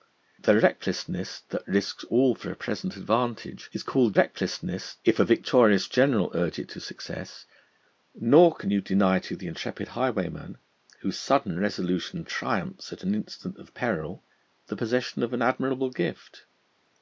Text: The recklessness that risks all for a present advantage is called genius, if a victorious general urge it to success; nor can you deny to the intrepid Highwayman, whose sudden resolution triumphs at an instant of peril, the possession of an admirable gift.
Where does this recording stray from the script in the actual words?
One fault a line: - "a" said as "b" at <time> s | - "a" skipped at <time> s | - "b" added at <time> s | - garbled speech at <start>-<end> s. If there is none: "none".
- "genius" said as "recklessness" at 4.1 s